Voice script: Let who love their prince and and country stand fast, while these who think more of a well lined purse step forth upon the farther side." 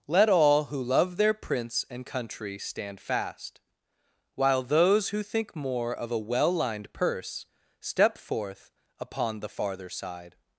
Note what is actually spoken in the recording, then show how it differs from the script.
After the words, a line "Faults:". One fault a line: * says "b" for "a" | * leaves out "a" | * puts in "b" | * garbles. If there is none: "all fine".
Let all who love their prince and country stand fast, while those who think more of a well lined purse step forth upon the farther side."
Faults:
* puts in "all"
* leaves out "and"
* says "those" for "these"